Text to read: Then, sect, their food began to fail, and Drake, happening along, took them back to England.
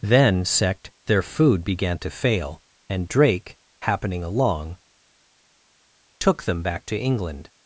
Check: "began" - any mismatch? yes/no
no